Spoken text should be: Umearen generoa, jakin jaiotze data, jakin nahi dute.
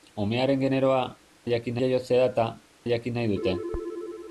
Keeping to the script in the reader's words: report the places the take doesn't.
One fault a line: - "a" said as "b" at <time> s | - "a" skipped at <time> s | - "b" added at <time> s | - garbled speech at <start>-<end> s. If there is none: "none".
none